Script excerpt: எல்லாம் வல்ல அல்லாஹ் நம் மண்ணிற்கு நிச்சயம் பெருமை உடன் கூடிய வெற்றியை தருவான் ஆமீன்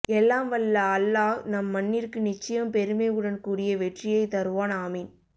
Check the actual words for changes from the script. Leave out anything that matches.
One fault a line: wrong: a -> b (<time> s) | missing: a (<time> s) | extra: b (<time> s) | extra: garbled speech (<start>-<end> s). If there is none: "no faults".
no faults